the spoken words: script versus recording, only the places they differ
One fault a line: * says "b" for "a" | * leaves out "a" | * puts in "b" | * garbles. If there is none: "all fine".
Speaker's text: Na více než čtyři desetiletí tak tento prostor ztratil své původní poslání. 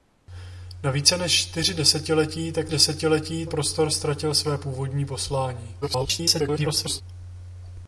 * says "desetiletí" for "tento"
* garbles